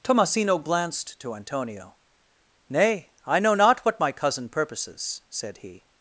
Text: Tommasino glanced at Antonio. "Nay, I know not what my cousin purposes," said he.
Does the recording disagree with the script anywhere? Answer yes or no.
yes